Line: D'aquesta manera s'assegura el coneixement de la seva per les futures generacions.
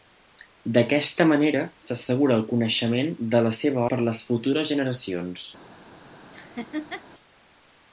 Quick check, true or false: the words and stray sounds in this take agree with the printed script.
false